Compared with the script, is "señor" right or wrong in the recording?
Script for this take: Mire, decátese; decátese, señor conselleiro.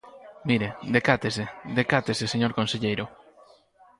right